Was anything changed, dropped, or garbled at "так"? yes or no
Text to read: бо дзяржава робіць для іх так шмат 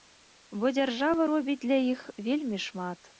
yes